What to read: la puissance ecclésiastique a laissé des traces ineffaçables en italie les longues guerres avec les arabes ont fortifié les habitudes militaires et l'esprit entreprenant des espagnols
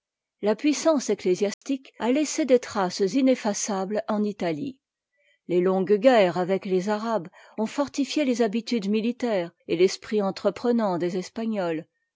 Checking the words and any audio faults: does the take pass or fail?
fail